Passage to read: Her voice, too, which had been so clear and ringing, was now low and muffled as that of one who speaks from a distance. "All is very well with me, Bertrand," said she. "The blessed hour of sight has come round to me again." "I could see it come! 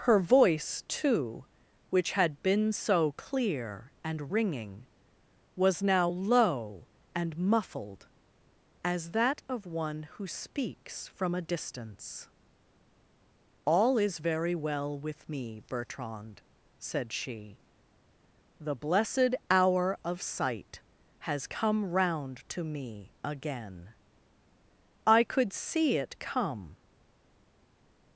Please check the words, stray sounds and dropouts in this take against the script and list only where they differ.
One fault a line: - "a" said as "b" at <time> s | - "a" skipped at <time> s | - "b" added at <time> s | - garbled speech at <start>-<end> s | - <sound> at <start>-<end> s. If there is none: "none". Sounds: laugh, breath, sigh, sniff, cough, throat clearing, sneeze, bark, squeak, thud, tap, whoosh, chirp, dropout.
none